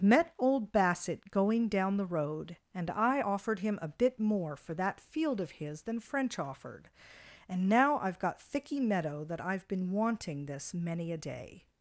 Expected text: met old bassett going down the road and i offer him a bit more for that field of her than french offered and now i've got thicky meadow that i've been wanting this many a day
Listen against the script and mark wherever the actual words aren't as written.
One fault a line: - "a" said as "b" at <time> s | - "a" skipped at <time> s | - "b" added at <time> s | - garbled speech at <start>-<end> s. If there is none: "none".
- "offer" said as "offered" at 3.2 s
- "her" said as "his" at 5.6 s